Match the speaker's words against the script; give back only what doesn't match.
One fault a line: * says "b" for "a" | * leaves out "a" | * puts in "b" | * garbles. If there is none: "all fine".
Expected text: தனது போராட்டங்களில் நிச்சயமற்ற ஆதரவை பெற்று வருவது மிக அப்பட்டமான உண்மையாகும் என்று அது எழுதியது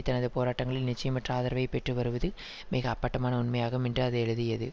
all fine